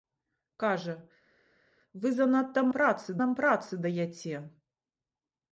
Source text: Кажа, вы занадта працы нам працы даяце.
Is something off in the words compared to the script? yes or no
no